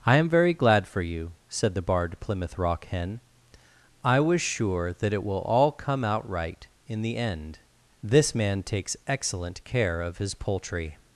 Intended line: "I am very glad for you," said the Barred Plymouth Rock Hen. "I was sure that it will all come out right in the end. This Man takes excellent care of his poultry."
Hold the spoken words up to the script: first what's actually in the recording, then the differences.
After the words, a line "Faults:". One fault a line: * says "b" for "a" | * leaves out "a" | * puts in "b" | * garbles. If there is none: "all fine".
"I am very glad for you," said the Barred Plymouth Rock Hen. "I was sure that it will all come out right in the end. This Man takes excellent care of his poultry."
Faults:
all fine